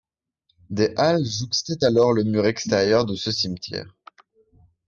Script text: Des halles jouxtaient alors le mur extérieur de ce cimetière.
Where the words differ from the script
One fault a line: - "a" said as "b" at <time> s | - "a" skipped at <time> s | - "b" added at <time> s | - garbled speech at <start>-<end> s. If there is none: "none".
none